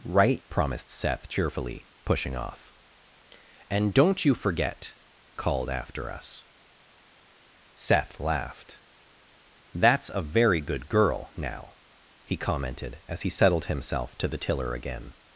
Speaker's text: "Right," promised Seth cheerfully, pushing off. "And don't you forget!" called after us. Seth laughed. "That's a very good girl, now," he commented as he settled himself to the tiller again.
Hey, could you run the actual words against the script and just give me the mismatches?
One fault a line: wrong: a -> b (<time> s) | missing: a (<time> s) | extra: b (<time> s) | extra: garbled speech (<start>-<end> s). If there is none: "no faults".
no faults